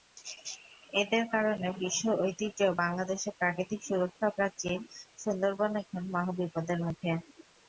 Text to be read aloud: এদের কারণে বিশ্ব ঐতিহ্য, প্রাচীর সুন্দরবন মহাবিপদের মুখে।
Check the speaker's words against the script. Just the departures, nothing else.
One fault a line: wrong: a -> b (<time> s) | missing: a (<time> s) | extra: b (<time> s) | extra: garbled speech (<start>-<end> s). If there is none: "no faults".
extra: বাংলাদেশের প্রাকৃতিক সুরক্ষা (2.8 s)
extra: এখন (5.8 s)